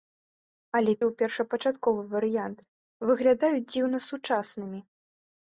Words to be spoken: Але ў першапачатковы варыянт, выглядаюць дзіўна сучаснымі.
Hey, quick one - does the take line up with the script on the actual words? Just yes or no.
yes